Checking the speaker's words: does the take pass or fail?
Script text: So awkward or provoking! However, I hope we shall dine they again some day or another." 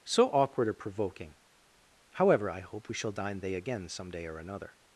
pass